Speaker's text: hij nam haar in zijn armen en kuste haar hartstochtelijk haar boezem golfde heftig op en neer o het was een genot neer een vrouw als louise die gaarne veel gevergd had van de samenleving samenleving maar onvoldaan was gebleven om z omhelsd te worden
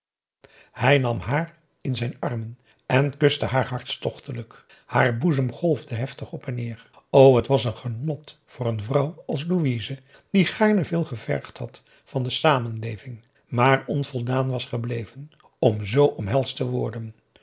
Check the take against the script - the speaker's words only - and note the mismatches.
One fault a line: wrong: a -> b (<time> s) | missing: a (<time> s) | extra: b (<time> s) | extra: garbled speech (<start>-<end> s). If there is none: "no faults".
wrong: neer -> voor (8.5 s)
missing: samenleving (13.2 s)